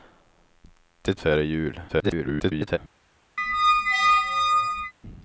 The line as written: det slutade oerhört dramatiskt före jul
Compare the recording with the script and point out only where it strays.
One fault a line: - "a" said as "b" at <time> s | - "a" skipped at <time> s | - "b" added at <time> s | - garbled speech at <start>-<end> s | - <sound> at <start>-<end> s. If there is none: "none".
- "slutade oerhört dramatiskt" skipped at 1.2 s
- garbled speech at 1.9-2.8 s
- squeak at 3.4-4.9 s